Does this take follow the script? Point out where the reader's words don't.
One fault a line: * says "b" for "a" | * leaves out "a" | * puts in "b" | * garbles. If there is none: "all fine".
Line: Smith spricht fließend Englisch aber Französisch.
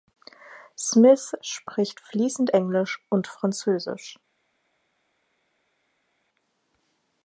* says "und" for "aber"